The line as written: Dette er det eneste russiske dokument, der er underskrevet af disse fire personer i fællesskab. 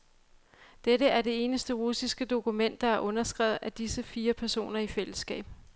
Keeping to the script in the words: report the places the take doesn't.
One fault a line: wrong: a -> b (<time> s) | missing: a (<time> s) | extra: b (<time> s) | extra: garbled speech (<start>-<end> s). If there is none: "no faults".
no faults